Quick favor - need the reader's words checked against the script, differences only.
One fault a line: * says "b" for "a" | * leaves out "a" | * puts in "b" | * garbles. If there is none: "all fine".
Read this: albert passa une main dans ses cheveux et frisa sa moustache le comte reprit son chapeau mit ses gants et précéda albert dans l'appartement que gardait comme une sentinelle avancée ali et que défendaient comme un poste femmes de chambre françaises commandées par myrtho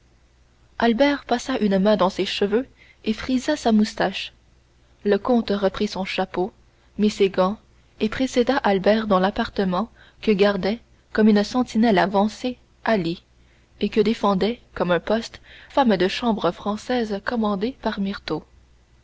all fine